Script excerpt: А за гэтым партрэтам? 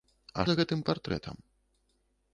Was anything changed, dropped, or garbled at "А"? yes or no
no